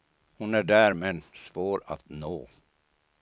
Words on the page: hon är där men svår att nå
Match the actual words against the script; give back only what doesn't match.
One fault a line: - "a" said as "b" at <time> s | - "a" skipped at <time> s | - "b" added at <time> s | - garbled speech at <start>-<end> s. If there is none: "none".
none